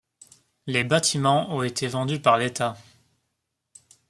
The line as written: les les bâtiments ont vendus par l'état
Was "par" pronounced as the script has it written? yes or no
yes